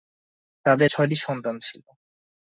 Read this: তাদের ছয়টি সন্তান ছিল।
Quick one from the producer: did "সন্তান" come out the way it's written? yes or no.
yes